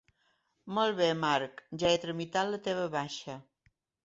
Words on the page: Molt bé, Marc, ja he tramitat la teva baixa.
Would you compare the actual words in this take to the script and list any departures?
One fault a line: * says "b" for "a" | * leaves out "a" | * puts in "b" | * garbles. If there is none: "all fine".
all fine